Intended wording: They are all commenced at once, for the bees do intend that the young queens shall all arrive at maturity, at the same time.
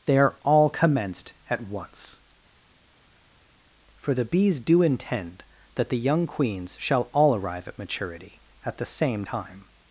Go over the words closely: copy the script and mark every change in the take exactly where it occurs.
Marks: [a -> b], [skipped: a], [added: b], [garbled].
They are all commenced at once, for the bees do intend that the young queens shall all arrive at maturity, at the same time.